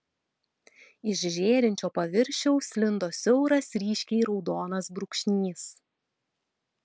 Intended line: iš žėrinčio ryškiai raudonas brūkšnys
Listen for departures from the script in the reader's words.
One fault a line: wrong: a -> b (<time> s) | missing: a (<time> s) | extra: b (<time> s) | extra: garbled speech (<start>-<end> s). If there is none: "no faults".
extra: paviršiaus lindo siauras (2.0 s)